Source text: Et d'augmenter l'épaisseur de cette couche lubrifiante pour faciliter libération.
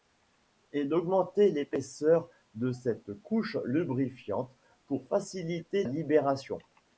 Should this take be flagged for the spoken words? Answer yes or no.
no